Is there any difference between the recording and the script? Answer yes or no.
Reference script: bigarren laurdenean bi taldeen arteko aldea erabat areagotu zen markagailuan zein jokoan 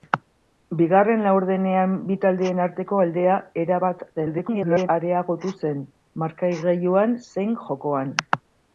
yes